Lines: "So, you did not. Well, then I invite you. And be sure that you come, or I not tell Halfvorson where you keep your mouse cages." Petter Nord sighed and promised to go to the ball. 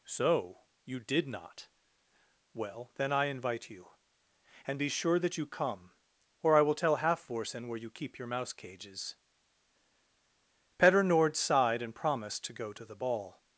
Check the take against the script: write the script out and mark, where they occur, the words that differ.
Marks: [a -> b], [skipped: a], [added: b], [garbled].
"So, you did not. Well, then I invite you. And be sure that you come, or I [not -> will] tell Halfvorson where you keep your mouse cages." Petter Nord sighed and promised to go to the ball.